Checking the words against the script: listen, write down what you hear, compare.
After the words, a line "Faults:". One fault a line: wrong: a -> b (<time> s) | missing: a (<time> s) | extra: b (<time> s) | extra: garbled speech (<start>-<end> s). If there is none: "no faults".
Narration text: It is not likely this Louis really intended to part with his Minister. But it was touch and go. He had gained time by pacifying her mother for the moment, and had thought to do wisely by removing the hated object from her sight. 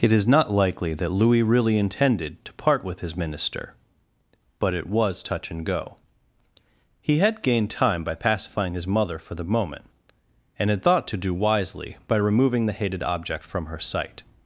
It is not likely that Louis really intended to part with his Minister. But it was touch and go. He had gained time by pacifying his mother for the moment, and had thought to do wisely by removing the hated object from her sight.
Faults:
wrong: this -> that (0.9 s)
wrong: her -> his (8.7 s)